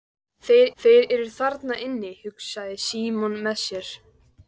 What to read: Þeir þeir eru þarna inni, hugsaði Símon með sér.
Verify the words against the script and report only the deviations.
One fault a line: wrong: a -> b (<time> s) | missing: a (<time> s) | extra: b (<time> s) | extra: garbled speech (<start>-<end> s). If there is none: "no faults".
no faults